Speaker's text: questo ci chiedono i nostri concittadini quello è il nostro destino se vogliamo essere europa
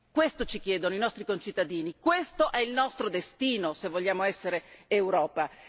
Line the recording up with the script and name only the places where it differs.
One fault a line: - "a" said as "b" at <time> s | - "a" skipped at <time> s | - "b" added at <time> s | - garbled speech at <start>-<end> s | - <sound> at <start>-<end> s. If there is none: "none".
- "quello" said as "questo" at 2.0 s